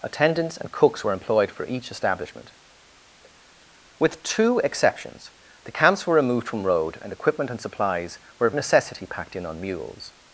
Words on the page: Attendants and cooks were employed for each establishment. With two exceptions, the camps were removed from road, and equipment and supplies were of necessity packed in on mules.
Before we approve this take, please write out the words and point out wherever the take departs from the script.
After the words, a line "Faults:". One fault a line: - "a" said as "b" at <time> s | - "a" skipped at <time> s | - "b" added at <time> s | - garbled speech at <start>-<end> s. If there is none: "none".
Attendants and cooks were employed for each establishment. With two exceptions, the camps were removed from road, and equipment and supplies were of necessity packed in on mules.
Faults:
none